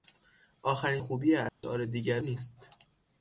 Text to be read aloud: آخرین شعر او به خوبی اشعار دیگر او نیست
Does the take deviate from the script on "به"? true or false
true